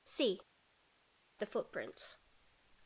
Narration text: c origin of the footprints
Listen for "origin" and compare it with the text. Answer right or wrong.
wrong